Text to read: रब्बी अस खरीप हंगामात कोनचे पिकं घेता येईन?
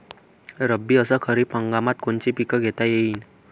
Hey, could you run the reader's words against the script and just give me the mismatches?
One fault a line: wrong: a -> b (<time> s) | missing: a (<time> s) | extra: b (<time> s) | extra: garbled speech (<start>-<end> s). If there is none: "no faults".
no faults